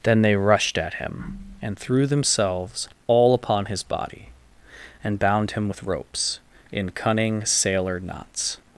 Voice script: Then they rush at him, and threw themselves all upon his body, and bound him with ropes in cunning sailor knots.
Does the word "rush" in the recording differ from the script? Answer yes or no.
yes